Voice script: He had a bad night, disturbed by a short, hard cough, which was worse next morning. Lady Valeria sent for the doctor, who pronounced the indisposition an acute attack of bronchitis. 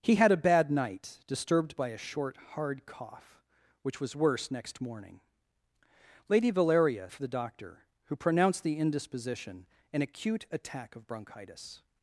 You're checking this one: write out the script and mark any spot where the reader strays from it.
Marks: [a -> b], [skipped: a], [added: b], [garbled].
He had a bad night, disturbed by a short, hard cough, which was worse next morning. Lady Valeria [skipped: sent] for the doctor, who pronounced the indisposition an acute attack of bronchitis.